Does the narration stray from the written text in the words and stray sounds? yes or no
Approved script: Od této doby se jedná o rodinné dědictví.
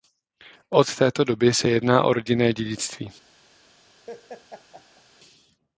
yes